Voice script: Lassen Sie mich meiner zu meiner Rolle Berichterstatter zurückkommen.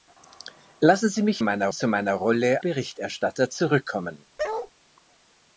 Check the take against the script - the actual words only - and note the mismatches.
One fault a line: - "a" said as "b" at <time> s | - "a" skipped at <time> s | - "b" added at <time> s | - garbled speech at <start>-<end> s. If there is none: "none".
none